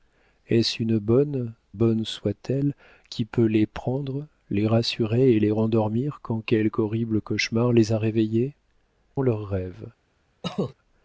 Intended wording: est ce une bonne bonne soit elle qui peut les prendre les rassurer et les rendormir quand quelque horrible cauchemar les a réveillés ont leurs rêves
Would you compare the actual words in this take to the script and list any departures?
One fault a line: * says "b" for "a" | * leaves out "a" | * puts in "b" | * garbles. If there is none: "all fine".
all fine